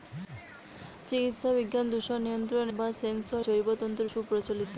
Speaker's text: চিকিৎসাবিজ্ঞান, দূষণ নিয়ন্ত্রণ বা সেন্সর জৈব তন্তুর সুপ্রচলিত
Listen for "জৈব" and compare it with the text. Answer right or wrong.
right